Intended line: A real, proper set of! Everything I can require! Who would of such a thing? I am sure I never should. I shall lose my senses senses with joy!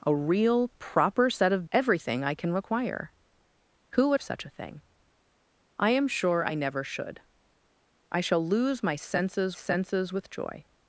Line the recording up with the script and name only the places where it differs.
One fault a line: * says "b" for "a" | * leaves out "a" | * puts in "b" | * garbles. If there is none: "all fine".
all fine